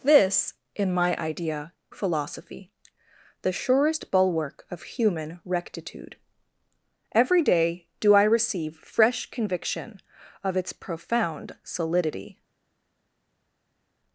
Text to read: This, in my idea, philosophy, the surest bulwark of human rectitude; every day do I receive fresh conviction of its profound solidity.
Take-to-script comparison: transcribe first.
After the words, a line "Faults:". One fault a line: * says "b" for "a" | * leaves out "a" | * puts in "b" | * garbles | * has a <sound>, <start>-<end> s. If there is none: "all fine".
This, in my idea, philosophy, the surest bulwark of human rectitude; every day do I receive fresh conviction of its profound solidity.
Faults:
all fine